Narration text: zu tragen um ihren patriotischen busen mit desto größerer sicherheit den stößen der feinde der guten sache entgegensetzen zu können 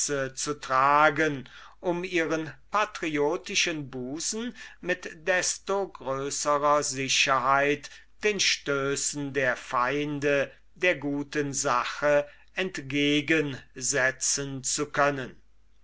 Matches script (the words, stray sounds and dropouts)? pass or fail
pass